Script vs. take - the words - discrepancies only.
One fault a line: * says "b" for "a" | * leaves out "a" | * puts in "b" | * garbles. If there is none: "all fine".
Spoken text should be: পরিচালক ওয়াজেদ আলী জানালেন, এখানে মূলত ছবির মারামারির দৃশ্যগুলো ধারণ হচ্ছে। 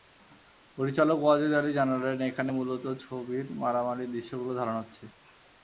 all fine